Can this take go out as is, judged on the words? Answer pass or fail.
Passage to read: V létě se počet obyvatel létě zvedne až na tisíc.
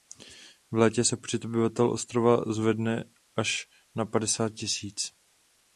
fail